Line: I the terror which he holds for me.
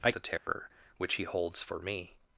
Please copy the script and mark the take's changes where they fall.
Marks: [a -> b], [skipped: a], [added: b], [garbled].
I the terror which he holds for me.